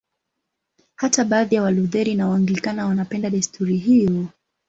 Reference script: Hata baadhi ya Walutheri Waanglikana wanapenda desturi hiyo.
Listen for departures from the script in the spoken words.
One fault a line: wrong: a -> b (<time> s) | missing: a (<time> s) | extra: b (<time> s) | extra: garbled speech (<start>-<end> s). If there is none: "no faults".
extra: na (2.1 s)